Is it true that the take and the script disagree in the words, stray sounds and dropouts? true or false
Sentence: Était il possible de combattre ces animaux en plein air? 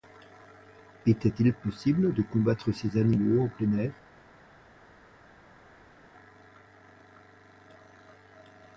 false